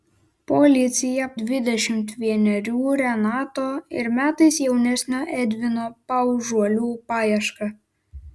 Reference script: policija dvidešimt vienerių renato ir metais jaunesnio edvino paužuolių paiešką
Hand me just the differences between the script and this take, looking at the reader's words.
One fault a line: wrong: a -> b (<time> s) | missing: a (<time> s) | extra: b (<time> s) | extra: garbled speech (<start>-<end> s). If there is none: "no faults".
no faults